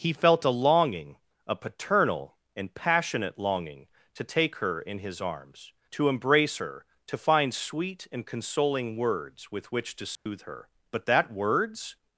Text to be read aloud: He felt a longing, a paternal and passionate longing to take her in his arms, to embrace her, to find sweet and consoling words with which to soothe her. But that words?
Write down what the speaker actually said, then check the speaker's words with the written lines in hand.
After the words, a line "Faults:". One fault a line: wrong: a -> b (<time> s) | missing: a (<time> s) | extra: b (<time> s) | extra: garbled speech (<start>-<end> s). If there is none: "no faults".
He felt a longing, a paternal and passionate longing to take her in his arms, to embrace her, to find sweet and consoling words with which to soothe her. But that words?
Faults:
no faults